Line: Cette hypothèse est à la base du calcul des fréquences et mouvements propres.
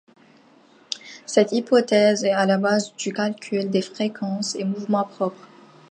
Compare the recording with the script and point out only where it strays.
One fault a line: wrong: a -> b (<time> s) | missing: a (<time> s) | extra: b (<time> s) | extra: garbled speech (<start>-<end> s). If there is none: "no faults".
no faults